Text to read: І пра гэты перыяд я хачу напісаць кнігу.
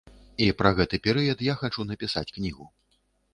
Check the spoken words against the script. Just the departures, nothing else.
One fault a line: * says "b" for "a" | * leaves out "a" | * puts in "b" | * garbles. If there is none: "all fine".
all fine